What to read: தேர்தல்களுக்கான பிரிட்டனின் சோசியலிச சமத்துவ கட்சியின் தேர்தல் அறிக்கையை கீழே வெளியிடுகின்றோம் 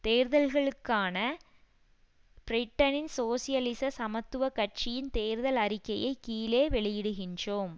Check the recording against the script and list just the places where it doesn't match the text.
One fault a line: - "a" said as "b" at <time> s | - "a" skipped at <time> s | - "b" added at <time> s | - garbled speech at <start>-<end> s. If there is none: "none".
none